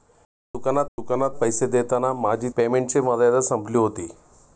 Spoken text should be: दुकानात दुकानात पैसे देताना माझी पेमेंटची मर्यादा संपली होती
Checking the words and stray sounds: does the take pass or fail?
pass